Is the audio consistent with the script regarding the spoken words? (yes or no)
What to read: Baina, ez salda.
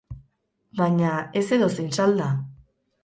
no